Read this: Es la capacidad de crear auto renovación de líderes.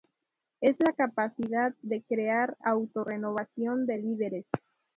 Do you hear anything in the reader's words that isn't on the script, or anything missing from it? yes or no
no